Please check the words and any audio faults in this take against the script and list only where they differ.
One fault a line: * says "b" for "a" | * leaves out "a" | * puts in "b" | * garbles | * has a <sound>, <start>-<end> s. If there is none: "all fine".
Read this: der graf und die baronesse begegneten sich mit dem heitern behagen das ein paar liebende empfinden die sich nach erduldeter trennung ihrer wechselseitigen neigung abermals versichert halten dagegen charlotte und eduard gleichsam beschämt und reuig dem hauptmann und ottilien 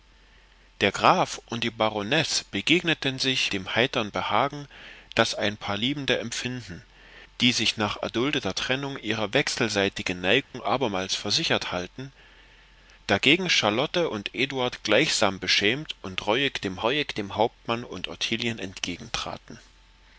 * leaves out "mit"
* has a dropout, 10.4-10.5 s
* puts in "reuig dem"